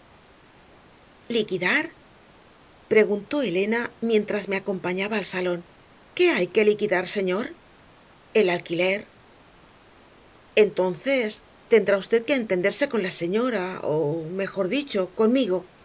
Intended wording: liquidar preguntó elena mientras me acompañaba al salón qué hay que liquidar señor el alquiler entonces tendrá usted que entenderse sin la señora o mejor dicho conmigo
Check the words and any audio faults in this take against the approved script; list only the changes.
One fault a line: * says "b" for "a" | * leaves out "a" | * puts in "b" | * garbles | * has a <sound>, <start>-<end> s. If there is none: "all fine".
* says "con" for "sin"